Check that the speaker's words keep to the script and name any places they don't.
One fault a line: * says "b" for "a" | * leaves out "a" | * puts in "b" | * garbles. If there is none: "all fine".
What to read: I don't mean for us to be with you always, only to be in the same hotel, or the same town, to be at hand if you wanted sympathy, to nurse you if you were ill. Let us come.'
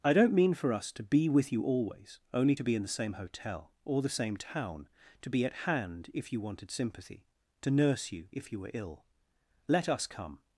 all fine